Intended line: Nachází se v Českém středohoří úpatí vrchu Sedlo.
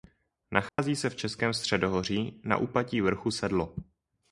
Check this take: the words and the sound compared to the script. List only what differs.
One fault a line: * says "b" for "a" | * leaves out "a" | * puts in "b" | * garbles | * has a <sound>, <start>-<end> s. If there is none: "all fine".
* has a dropout, 0.7-0.8 s
* puts in "na"